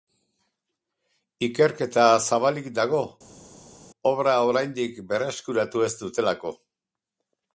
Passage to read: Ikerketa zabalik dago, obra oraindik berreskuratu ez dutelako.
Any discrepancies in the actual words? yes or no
no